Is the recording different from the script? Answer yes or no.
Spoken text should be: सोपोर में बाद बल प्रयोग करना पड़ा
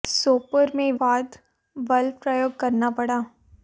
no